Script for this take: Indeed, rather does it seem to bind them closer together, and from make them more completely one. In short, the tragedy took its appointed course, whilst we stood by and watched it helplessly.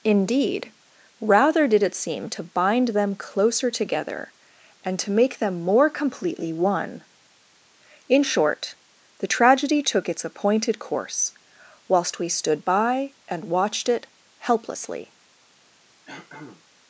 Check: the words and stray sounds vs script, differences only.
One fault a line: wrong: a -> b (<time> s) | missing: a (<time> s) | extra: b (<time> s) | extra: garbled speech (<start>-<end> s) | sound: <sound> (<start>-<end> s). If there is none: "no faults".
wrong: does -> did (1.7 s)
wrong: from -> to (5.0 s)
sound: throat clearing (16.0-16.6 s)